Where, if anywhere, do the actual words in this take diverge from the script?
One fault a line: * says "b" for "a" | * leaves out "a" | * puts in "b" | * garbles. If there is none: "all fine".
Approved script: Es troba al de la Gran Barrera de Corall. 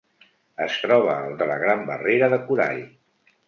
all fine